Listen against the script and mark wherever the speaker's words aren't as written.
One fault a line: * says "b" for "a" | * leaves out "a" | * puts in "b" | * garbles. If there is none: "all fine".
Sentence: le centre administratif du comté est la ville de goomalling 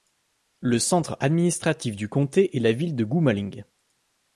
all fine